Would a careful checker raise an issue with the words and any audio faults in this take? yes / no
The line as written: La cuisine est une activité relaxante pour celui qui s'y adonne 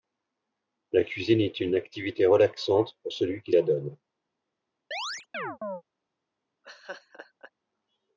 yes